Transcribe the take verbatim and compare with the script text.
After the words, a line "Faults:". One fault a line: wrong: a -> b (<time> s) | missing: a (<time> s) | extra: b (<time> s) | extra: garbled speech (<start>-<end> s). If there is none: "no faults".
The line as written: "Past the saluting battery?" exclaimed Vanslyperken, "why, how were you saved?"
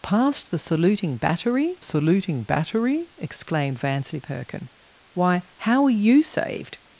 "Past the saluting battery saluting battery?" exclaimed Vanslyperken, "why, how were you saved?"
Faults:
extra: saluting battery (1.8 s)